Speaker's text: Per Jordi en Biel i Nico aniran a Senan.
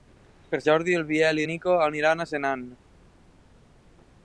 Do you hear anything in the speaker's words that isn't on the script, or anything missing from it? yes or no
no